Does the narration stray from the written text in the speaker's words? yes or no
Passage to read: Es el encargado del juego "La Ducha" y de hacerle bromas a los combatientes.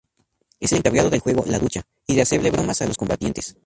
no